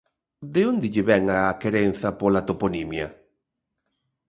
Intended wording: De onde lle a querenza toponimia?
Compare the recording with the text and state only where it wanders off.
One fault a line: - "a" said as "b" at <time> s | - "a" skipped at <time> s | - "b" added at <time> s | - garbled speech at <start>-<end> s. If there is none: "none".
- "vén" added at 1.1 s
- "pola" added at 2.2 s